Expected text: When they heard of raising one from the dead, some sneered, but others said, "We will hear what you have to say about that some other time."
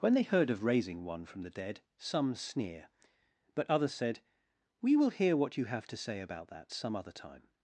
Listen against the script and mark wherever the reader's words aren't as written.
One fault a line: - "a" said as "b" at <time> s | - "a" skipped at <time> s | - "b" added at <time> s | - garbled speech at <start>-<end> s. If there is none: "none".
- "sneered" said as "sneer" at 2.3 s